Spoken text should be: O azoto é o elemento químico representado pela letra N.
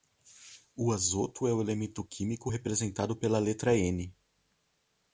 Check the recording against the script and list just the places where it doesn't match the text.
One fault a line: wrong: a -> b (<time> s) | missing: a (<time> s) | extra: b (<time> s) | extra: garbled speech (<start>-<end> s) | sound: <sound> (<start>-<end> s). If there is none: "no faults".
no faults